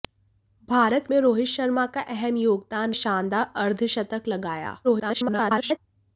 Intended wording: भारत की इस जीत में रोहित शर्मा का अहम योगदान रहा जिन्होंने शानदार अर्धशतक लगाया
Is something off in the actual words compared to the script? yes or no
yes